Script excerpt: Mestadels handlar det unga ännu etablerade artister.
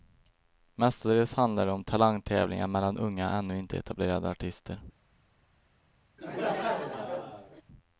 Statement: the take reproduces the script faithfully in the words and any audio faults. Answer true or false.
false